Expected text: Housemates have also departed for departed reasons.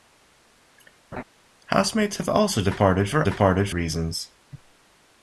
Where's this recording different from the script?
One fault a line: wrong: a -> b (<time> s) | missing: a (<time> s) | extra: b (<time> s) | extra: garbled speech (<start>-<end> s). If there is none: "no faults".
no faults